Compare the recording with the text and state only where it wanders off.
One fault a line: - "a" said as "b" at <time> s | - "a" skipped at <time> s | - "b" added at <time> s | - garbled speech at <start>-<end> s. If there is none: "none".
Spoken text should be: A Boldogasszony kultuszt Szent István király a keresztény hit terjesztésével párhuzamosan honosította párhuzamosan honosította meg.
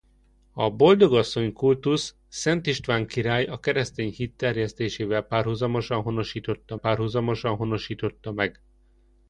none